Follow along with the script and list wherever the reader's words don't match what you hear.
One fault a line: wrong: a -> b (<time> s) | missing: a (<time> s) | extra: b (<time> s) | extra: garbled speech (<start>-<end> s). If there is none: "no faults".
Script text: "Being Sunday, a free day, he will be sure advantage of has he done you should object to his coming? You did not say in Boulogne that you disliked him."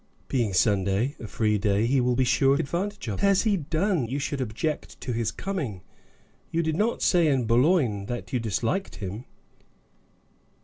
no faults